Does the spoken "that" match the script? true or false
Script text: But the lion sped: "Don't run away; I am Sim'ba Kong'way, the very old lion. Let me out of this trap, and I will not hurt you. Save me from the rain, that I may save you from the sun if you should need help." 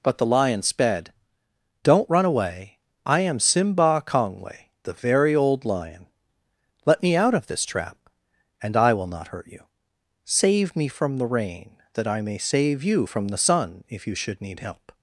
true